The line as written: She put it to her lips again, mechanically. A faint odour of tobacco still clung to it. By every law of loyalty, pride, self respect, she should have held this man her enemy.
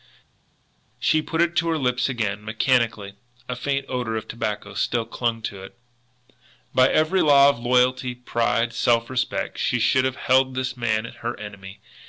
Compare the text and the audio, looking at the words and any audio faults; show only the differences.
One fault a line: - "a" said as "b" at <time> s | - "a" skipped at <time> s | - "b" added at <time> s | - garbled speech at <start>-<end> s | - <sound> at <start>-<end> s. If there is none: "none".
none